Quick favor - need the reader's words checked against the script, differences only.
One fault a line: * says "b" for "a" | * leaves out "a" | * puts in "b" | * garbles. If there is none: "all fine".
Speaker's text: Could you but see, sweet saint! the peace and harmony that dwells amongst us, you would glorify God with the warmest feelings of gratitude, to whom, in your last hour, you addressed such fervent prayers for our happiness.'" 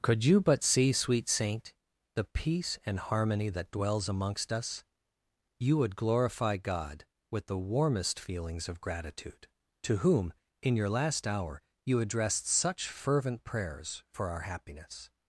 all fine